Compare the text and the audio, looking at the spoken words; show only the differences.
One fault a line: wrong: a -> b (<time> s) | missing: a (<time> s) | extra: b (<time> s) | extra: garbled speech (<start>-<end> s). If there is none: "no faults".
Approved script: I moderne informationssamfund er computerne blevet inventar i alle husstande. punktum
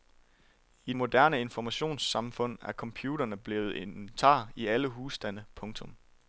no faults